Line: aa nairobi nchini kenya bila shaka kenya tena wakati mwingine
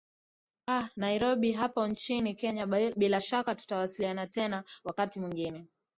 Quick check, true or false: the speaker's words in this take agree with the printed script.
false